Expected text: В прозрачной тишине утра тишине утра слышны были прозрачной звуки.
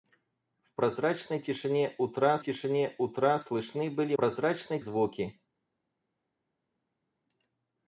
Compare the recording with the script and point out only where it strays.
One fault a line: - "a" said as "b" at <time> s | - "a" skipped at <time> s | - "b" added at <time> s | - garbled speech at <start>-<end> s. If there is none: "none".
none